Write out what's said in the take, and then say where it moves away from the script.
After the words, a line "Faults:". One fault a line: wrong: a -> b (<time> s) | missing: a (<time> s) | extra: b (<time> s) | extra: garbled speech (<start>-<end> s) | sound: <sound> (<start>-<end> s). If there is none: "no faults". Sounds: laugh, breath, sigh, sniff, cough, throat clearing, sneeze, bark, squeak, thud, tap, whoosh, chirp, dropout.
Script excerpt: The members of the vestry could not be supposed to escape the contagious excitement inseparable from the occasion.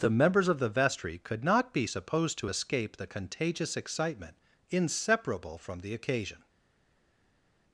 The members of the vestry could not be supposed to escape the contagious excitement inseparable from the occasion.
Faults:
no faults